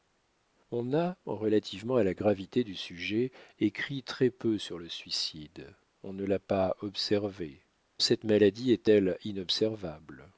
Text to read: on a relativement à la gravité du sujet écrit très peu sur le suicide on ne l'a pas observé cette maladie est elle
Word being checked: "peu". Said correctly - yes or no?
yes